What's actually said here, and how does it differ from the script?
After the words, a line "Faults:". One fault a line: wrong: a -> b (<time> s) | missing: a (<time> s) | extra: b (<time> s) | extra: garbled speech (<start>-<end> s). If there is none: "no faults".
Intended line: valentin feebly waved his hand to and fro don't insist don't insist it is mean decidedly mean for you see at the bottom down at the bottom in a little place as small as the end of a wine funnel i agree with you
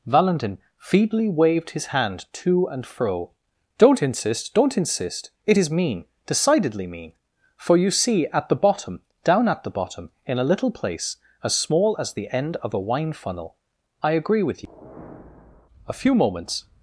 valentin feebly waved his hand to and fro don't insist don't insist it is mean decidedly mean for you see at the bottom down at the bottom in a little place as small as the end of a wine funnel i agree with you a few moments
Faults:
extra: a few moments (15.9 s)